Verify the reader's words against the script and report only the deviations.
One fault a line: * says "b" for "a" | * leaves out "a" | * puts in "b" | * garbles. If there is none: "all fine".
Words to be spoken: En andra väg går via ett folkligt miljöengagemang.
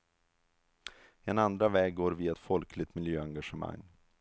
all fine